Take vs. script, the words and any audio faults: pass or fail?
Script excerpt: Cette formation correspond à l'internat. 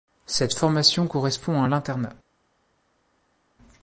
pass